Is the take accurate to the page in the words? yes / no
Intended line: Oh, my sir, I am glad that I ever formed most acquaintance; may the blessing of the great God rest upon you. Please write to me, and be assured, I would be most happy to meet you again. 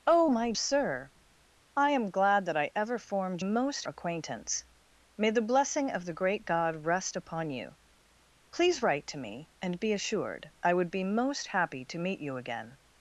yes